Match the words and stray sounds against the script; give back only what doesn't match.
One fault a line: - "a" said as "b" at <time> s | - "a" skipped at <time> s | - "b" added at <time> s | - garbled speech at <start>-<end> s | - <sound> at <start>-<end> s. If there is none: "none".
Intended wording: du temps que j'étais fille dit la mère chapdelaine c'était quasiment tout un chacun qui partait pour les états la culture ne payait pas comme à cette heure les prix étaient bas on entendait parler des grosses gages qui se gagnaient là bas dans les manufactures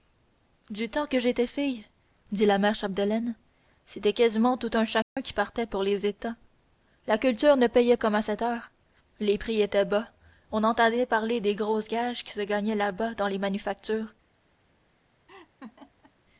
- dropout at 5.0-5.2 s
- "pas" skipped at 8.0 s
- laugh at 15.3-16.1 s